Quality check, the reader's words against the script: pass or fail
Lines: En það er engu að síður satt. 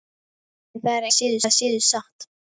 fail